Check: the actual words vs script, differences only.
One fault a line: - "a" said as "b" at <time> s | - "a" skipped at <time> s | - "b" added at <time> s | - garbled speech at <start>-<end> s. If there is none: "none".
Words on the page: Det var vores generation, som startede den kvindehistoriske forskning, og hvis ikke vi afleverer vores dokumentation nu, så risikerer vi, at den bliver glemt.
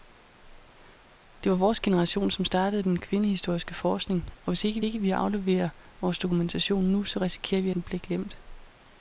- "ikke" added at 4.8 s
- "at" skipped at 7.7 s